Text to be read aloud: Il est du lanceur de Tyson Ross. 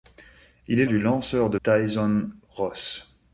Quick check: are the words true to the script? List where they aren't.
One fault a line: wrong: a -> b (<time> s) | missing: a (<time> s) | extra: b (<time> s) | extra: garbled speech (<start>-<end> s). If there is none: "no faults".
no faults